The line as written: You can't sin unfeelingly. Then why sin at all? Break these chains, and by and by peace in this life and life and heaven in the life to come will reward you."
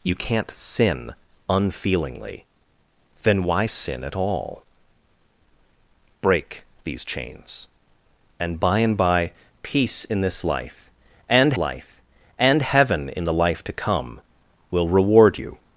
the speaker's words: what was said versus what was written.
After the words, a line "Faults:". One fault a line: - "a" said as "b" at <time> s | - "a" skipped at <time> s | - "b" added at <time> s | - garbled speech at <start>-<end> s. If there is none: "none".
You can't sin unfeelingly. Then why sin at all? Break these chains, and by and by peace in this life and life and heaven in the life to come will reward you."
Faults:
none